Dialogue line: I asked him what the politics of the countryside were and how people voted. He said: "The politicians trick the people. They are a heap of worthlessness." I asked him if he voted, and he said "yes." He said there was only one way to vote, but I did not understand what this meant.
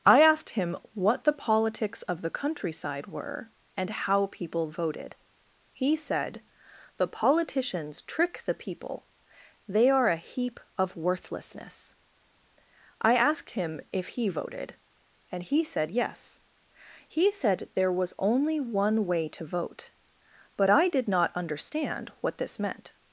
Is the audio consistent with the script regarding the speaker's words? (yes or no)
yes